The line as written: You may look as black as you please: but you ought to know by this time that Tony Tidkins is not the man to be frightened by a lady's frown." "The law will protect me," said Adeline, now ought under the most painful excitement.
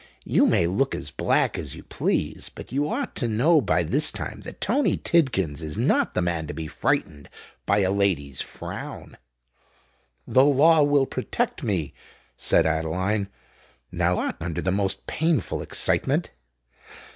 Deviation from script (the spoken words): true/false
false